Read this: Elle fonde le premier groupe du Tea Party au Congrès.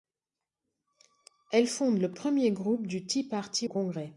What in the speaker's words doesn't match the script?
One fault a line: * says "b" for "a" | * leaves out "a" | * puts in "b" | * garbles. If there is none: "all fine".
* leaves out "au"